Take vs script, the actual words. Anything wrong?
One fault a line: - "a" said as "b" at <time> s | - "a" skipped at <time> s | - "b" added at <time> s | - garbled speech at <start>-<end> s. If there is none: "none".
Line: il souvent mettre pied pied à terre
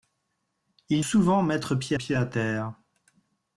none